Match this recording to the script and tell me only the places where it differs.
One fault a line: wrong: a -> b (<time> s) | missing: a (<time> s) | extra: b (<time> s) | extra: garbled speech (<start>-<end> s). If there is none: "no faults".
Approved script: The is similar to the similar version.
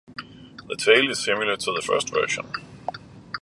extra: tail (0.7 s)
wrong: similar -> first (1.8 s)